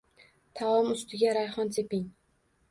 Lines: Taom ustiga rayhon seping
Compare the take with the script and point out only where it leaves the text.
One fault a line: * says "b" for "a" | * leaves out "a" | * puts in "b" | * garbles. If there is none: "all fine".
all fine